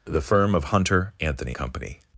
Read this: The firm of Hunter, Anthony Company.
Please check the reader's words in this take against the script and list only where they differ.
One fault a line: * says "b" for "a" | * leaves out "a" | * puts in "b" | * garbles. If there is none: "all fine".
all fine